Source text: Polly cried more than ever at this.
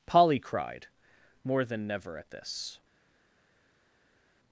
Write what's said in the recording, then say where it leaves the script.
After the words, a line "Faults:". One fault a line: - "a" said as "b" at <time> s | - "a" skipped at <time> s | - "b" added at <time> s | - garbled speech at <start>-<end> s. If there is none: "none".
Polly cried more than never at this.
Faults:
- "ever" said as "never" at 1.9 s